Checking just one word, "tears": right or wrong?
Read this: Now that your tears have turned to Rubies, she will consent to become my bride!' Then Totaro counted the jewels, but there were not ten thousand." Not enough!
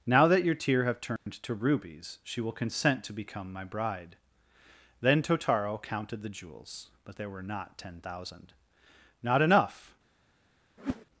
wrong